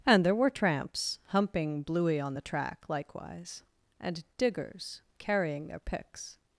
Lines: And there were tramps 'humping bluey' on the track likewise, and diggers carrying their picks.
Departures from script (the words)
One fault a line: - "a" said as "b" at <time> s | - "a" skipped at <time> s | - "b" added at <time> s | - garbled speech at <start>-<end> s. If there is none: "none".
none